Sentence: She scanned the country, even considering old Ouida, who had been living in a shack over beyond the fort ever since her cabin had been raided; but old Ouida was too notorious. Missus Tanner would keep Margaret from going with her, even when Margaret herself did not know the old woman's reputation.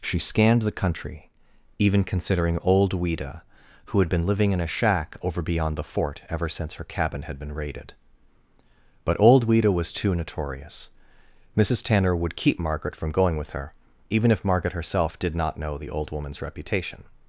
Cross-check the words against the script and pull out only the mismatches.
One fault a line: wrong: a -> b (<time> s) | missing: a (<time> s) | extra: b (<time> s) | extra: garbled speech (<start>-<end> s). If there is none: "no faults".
wrong: when -> if (14.3 s)